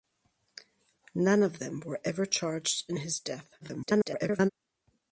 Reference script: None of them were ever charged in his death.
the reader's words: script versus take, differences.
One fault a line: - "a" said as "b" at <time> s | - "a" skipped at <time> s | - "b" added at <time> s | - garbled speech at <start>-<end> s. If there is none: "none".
- garbled speech at 3.6-4.5 s